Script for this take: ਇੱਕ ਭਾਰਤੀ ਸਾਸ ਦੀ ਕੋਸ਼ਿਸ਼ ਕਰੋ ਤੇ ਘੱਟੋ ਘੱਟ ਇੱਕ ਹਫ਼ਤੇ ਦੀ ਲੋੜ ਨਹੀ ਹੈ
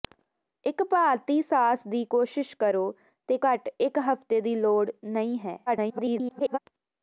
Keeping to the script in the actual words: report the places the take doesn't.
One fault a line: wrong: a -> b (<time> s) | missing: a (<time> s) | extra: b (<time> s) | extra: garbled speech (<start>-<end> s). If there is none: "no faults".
missing: ਘੱਟੋ (3.4 s)
extra: garbled speech (5.7-6.6 s)